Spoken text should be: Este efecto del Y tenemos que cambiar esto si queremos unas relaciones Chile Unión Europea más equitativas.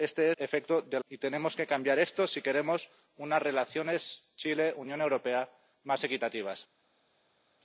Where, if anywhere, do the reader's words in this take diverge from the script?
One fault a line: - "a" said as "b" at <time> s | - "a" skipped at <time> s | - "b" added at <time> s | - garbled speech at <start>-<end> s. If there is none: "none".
none